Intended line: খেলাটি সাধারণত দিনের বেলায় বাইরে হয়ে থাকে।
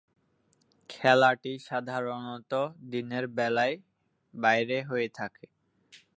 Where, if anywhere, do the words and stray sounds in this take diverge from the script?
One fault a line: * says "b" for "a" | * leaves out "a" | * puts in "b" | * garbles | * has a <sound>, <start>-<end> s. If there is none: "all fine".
all fine